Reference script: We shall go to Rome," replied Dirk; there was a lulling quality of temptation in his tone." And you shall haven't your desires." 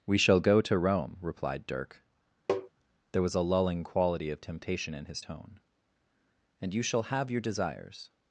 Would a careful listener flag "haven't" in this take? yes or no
yes